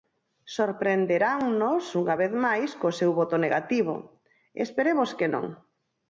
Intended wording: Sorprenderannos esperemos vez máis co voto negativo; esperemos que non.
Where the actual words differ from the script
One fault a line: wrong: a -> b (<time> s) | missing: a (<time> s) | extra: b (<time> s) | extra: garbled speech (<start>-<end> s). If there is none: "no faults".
wrong: esperemos -> unha (2.0 s)
extra: seu (3.0 s)